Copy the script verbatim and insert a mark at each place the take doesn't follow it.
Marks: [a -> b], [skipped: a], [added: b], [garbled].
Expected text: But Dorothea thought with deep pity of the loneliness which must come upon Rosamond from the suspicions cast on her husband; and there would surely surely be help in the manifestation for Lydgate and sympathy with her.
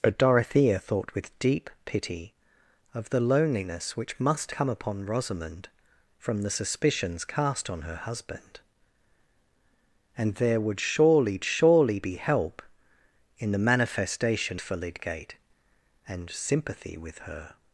But Dorothea thought with deep pity of the loneliness which must come upon Rosamond from the suspicions cast on her husband; and there would surely surely be help in the manifestation for Lydgate and sympathy with her.